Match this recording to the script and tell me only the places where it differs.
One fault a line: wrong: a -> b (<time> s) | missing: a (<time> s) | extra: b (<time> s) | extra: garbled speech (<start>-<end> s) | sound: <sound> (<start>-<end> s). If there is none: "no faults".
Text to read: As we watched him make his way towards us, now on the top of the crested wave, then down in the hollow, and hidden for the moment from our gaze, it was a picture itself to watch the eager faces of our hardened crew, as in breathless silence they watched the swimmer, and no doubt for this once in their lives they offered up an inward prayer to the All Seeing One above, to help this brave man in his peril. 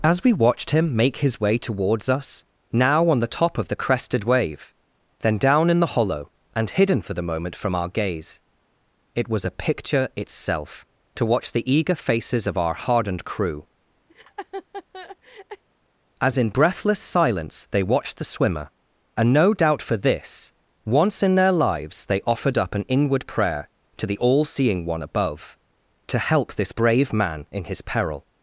sound: laugh (14.1-15.6 s)